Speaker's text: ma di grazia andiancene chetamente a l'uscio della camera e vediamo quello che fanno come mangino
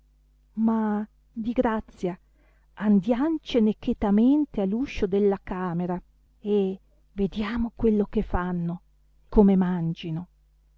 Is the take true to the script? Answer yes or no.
yes